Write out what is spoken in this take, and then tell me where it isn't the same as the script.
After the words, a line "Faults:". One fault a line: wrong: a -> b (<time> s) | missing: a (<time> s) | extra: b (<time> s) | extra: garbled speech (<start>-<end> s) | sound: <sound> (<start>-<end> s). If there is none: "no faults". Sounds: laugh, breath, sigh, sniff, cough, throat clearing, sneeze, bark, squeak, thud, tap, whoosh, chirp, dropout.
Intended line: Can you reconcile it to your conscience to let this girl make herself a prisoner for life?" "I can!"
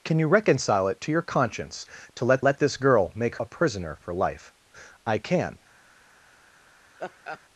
Can you reconcile it to your conscience to let let this girl make a prisoner for life?" "I can!"
Faults:
extra: let (2.4 s)
missing: herself (3.4 s)
sound: laugh (7.0-7.4 s)